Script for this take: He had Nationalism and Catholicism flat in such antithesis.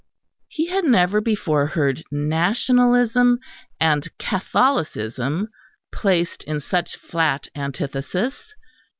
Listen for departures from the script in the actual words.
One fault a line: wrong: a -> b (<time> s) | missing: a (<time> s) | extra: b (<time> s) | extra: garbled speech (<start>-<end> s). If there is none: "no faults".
extra: never before heard (0.8 s)
wrong: flat -> placed (5.9 s)
extra: flat (7.0 s)